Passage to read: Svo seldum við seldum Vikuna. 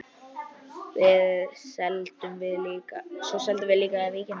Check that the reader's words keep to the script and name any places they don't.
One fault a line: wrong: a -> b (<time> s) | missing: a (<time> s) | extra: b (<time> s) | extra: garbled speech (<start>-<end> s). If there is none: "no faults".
wrong: seldum -> líka (3.8 s)